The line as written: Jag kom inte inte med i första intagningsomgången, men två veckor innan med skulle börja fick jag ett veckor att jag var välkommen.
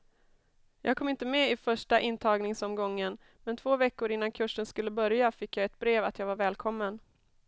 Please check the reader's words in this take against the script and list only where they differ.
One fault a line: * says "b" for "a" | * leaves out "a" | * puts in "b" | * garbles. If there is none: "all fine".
* leaves out "inte"
* says "kursen" for "med"
* says "brev" for "veckor"